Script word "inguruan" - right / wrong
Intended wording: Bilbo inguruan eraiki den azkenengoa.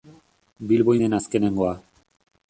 wrong